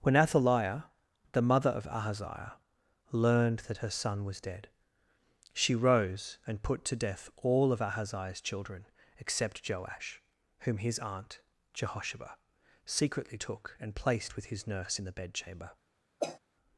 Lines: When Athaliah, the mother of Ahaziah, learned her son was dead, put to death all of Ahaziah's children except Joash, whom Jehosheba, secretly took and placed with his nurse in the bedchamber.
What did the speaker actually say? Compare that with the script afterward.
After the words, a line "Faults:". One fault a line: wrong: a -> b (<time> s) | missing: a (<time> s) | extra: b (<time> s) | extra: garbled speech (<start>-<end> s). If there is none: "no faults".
When Athaliah, the mother of Ahaziah, learned that her son was dead, she rose and put to death all of Ahaziah's children except Joash, whom his aunt, Jehosheba, secretly took and placed with his nurse in the bedchamber.
Faults:
extra: that (3.7 s)
extra: she rose and (5.5 s)
extra: his aunt (10.8 s)